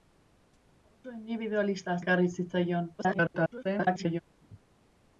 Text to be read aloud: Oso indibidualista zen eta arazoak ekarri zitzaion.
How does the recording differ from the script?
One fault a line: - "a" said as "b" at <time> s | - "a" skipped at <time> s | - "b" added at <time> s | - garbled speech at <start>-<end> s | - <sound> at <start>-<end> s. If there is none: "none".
- "zen eta arazoak" skipped at 1.9 s
- garbled speech at 3.0-4.2 s